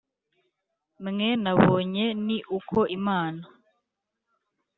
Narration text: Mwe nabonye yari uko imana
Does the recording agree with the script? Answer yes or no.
no